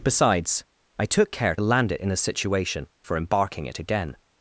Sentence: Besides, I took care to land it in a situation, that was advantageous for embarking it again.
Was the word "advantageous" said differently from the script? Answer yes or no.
yes